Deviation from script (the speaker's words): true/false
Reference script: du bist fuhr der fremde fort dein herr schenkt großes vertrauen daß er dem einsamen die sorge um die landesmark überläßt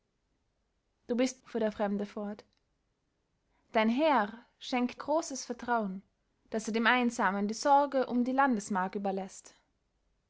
false